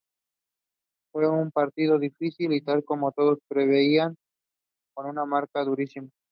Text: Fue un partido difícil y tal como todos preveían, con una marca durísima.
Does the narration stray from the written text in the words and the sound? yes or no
no